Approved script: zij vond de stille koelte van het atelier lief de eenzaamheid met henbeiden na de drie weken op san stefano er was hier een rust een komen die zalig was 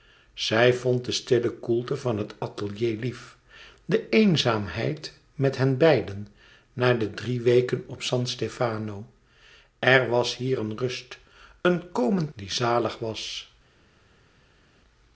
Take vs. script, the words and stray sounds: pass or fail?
pass